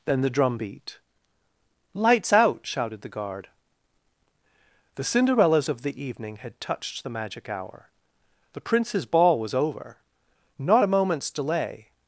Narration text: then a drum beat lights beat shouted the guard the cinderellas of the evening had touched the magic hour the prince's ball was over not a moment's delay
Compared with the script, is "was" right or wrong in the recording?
right